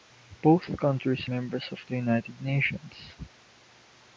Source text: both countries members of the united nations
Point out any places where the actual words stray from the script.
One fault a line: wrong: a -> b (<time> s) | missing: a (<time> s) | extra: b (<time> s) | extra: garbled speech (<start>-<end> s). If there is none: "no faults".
no faults